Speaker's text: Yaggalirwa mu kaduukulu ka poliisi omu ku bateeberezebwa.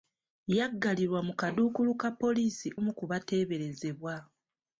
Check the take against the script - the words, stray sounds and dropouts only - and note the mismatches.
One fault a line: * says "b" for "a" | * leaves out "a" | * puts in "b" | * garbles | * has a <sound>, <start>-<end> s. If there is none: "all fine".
all fine